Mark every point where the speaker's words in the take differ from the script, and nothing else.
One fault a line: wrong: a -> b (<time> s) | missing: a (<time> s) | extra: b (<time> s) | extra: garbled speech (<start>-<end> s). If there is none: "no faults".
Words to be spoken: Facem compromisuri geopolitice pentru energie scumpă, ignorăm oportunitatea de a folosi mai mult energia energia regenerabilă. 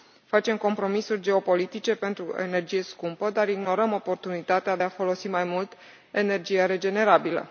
extra: dar (3.3 s)
missing: energia (6.6 s)